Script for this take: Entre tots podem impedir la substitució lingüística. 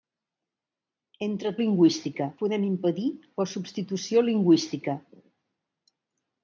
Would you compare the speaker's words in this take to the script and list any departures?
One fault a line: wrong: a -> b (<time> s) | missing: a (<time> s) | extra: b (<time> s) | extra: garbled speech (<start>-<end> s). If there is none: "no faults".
wrong: tots -> lingüística (1.6 s)